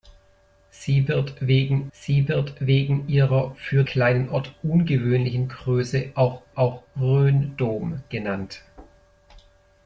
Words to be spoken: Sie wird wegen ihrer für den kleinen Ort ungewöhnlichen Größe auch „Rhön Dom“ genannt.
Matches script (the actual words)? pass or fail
fail